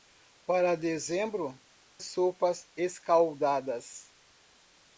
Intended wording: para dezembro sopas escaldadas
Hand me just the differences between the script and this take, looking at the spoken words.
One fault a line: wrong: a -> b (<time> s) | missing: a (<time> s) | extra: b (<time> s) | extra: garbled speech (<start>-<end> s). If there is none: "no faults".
no faults